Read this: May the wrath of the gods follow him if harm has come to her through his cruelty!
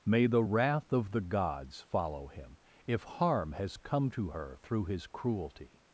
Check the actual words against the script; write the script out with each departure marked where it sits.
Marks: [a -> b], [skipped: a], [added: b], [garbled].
May the wrath of the gods follow him if harm has come to her through his cruelty!